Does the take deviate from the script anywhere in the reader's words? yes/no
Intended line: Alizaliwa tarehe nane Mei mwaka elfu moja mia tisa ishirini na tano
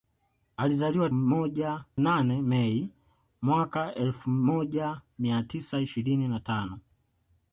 yes